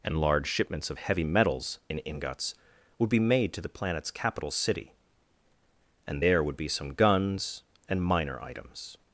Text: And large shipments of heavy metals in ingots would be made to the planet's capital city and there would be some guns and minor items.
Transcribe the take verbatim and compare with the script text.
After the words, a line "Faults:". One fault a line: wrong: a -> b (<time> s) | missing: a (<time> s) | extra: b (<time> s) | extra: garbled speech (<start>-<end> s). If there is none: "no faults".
And large shipments of heavy metals in ingots would be made to the planet's capital city and there would be some guns and minor items.
Faults:
no faults